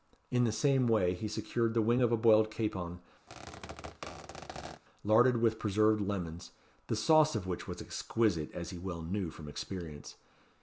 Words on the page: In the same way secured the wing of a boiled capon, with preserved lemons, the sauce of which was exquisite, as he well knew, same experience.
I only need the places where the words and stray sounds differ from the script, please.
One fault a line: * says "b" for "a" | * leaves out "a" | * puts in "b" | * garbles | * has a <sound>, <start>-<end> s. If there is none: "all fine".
* puts in "he"
* has a squeak, 3.3-4.8 s
* puts in "larded"
* says "from" for "same"